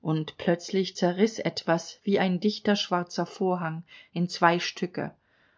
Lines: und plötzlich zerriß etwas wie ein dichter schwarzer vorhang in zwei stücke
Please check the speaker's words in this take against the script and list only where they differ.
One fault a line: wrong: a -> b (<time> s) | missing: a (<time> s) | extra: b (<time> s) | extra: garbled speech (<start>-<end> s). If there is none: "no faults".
no faults